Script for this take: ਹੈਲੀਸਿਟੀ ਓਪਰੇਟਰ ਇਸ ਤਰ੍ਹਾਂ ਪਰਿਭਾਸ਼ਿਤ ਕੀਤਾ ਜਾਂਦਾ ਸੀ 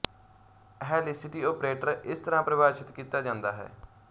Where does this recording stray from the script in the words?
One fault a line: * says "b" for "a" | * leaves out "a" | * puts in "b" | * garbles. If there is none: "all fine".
* says "ਹੈ" for "ਸੀ"